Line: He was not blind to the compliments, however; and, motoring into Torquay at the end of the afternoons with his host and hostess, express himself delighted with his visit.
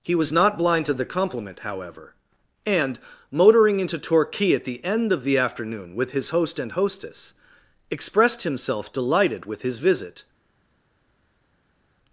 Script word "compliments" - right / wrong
wrong